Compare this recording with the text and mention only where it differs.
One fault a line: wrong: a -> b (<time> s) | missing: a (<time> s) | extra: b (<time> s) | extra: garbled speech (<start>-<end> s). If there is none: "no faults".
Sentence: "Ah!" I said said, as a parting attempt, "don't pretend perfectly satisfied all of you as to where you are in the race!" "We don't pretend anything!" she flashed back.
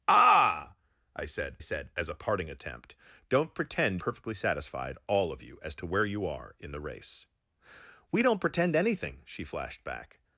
no faults